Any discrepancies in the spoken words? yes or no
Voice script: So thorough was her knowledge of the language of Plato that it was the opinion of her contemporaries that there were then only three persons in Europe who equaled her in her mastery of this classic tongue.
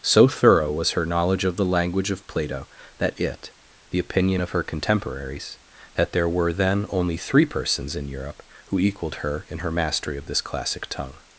yes